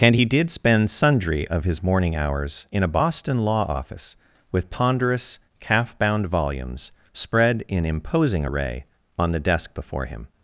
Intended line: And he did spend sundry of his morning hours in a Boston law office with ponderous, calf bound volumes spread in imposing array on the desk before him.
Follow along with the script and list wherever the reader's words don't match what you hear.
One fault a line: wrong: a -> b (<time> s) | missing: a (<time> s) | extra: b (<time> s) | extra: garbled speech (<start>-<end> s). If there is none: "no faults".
no faults